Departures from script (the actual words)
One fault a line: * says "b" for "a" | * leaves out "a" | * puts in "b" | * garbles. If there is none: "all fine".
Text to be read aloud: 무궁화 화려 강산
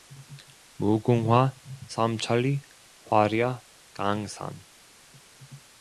* puts in "삼천리"